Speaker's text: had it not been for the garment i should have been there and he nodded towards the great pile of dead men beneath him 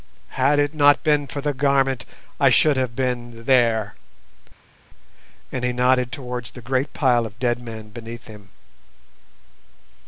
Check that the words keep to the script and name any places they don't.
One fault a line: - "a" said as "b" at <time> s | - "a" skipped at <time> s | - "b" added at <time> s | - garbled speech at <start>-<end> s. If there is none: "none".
none